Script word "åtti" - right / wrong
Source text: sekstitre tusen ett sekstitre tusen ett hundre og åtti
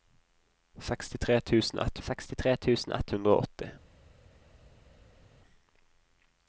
right